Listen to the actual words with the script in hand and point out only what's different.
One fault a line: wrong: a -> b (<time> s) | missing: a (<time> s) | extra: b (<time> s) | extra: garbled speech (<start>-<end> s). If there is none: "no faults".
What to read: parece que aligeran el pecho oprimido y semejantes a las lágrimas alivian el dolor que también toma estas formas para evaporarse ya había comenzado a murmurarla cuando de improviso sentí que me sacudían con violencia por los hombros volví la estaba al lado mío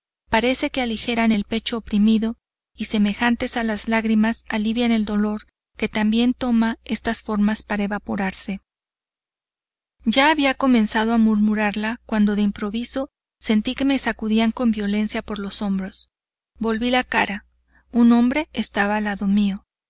extra: cara un hombre (17.0 s)